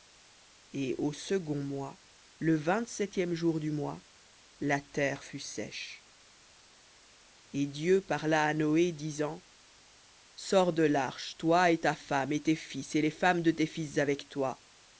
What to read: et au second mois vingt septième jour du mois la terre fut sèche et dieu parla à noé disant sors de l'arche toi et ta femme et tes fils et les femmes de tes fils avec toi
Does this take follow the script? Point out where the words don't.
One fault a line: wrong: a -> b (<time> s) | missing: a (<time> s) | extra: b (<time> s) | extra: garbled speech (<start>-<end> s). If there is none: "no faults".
extra: le (2.4 s)